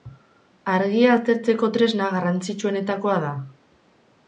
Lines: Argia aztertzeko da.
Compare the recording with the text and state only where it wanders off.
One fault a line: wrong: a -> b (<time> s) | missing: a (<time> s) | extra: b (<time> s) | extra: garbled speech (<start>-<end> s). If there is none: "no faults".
extra: tresna garrantzitsuenetakoa (1.8 s)